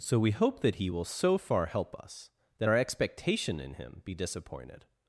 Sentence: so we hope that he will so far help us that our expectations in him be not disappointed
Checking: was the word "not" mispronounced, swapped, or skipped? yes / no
yes